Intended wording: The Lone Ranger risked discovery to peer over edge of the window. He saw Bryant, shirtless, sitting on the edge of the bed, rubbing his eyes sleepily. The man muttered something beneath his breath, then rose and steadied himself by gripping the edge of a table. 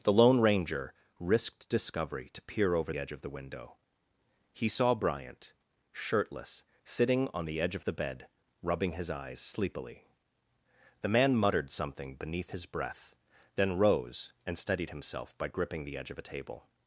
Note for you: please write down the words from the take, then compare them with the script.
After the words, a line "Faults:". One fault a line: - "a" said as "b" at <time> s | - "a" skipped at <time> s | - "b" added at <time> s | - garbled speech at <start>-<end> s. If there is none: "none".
The Lone Ranger risked discovery to peer over edge of the window. He saw Bryant, shirtless, sitting on the edge of the bed, rubbing his eyes sleepily. The man muttered something beneath his breath, then rose and steadied himself by gripping the edge of a table.
Faults:
none